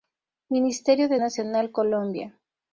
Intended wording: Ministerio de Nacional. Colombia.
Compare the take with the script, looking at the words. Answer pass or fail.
pass